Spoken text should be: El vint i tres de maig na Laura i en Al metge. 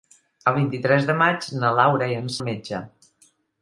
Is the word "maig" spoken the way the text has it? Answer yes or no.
yes